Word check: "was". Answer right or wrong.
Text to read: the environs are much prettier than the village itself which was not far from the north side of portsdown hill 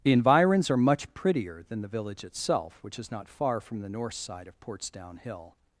wrong